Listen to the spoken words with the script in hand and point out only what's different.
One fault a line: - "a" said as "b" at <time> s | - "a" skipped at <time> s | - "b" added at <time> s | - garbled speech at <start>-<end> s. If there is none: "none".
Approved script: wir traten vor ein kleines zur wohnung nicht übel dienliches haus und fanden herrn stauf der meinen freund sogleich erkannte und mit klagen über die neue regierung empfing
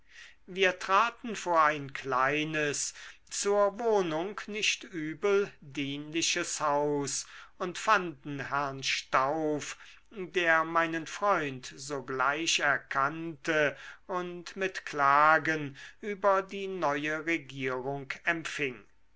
none